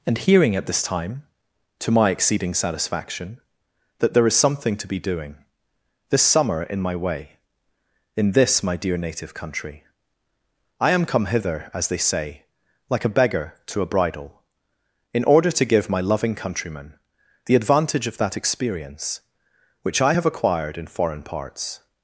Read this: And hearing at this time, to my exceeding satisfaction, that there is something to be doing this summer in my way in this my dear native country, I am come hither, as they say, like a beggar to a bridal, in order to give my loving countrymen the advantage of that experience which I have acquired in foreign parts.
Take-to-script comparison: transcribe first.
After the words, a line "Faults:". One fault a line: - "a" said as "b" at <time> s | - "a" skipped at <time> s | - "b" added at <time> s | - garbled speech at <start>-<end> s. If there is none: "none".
And hearing at this time, to my exceeding satisfaction, that there is something to be doing this summer in my way in this my dear native country, I am come hither, as they say, like a beggar to a bridal, in order to give my loving countrymen the advantage of that experience which I have acquired in foreign parts.
Faults:
none